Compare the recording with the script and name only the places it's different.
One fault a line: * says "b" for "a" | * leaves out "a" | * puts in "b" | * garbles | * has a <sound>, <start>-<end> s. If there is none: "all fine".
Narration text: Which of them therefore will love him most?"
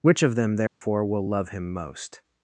* has a dropout, 0.7-0.8 s